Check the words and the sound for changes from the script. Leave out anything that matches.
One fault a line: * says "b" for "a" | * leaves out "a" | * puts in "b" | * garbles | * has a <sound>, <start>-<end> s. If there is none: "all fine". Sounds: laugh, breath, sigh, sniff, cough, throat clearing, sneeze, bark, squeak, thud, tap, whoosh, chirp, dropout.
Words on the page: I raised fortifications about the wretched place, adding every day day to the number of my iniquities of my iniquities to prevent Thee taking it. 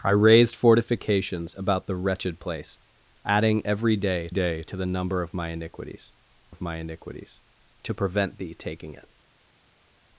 all fine